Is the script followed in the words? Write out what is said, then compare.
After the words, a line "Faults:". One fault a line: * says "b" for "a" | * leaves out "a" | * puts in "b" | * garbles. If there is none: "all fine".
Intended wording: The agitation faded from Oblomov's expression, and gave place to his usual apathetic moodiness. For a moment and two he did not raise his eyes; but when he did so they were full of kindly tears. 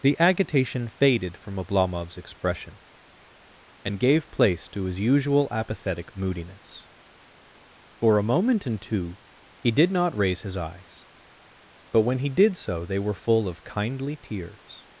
The agitation faded from Oblomov's expression, and gave place to his usual apathetic moodiness. For a moment and two he did not raise his eyes; but when he did so they were full of kindly tears.
Faults:
all fine